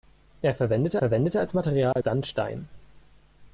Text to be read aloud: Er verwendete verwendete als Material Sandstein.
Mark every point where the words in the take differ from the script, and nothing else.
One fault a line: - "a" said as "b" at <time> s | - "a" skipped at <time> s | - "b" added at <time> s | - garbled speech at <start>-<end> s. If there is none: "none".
none